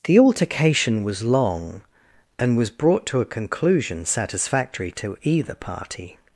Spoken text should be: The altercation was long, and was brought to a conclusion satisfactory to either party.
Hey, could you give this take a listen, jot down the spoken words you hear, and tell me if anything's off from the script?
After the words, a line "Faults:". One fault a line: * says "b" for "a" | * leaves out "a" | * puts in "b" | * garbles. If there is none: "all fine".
The altercation was long, and was brought to a conclusion satisfactory to either party.
Faults:
all fine